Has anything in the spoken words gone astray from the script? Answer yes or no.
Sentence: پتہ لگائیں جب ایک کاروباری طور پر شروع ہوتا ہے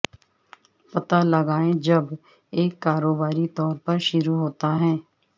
no